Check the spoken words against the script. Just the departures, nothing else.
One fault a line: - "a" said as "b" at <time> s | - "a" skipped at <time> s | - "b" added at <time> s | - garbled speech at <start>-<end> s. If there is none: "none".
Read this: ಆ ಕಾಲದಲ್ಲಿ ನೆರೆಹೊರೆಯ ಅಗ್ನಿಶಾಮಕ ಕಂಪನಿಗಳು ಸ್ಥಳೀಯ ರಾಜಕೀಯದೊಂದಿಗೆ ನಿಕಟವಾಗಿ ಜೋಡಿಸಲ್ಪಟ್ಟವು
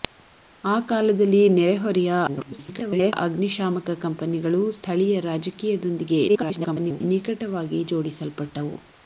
- garbled speech at 2.3-3.1 s
- garbled speech at 6.3-7.0 s